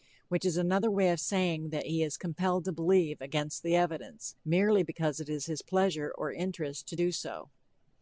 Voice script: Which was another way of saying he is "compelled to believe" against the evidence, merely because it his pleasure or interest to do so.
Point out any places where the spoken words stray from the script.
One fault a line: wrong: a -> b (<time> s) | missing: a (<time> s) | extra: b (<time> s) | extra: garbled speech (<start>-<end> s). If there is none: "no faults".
wrong: was -> is (0.5 s)
extra: that (1.7 s)
extra: is (5.3 s)